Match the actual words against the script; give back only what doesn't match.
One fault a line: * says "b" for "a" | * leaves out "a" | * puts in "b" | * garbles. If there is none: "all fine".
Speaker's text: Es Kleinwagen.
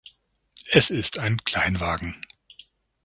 * puts in "ist ein"